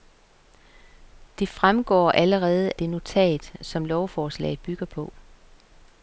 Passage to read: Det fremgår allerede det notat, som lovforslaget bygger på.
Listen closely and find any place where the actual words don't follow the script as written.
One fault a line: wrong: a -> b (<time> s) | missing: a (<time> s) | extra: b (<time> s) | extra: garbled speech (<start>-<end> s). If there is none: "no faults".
no faults